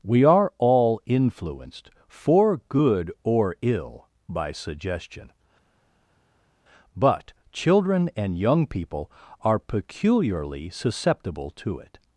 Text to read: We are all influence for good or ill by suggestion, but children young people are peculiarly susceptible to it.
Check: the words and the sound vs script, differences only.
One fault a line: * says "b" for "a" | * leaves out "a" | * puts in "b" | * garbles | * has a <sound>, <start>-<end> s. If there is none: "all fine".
* says "influenced" for "influence"
* puts in "and"